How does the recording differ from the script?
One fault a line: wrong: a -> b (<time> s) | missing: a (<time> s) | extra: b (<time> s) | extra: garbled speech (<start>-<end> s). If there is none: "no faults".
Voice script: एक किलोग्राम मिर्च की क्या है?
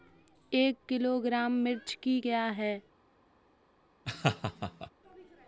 no faults